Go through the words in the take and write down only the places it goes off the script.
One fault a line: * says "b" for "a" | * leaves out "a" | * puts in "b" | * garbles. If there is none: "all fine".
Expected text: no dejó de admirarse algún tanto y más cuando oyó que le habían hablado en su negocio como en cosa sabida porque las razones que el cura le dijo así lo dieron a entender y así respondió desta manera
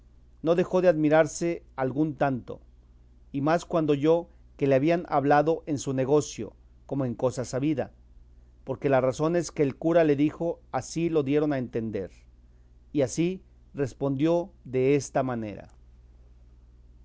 all fine